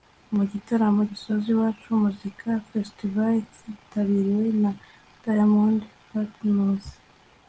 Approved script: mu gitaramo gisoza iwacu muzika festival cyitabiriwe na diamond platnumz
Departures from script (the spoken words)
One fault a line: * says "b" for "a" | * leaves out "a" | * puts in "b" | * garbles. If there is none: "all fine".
all fine